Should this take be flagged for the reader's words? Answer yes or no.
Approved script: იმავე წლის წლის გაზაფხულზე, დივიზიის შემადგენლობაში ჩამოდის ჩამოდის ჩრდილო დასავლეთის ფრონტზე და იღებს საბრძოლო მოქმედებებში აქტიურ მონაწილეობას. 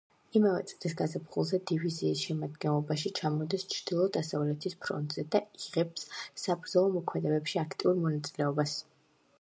yes